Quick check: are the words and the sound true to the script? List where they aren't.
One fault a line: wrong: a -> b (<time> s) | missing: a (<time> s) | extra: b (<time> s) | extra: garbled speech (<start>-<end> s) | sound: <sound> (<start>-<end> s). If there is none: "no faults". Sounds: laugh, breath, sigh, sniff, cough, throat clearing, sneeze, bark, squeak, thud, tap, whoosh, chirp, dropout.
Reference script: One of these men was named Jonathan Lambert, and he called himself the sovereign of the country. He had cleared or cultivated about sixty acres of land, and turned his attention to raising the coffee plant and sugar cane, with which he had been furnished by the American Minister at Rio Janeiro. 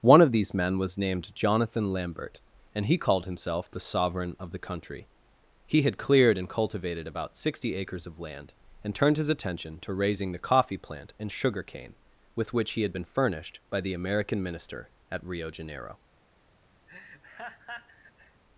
wrong: or -> and (6.4 s)
sound: laugh (16.9-18.4 s)